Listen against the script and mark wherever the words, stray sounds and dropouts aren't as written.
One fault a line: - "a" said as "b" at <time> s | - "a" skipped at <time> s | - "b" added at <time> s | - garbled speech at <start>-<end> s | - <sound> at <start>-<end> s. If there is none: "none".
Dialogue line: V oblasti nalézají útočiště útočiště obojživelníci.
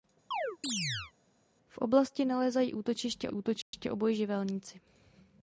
- chirp at 0.3-1.1 s
- dropout at 3.6-3.7 s